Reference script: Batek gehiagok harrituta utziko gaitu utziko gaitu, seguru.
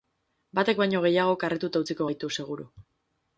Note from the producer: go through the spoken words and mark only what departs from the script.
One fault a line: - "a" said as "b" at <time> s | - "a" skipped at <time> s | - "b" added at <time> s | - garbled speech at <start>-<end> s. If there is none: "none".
- "baino" added at 0.8 s
- "utziko gaitu" skipped at 2.3 s